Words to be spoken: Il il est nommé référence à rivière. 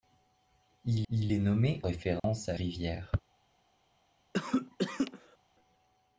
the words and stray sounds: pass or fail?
fail